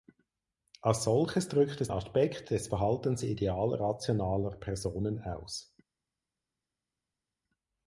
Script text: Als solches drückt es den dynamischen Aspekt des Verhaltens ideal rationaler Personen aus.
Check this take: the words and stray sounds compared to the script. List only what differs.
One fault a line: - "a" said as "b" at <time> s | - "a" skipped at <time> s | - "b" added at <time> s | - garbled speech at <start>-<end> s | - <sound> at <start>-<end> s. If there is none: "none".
- "den dynamischen" skipped at 1.9 s